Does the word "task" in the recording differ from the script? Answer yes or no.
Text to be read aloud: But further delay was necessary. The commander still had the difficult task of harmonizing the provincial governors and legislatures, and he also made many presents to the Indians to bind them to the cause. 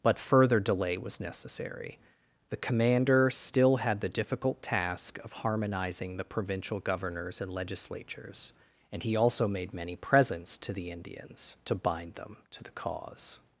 no